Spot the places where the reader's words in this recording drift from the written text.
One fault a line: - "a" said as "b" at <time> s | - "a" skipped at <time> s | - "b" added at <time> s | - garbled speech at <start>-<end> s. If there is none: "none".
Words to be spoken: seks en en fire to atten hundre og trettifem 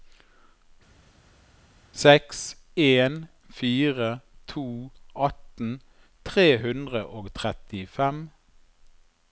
- "en" skipped at 3.3 s
- "tre" added at 6.2 s